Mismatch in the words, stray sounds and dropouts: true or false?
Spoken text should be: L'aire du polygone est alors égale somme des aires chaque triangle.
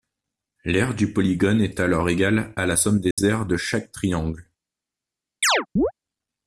true